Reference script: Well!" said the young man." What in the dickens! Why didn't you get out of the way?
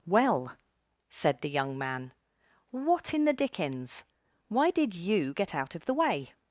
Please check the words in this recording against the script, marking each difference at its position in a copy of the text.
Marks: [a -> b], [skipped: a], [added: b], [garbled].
Well!" said the young man." What in the dickens! Why [didn't -> did] you get out of the way?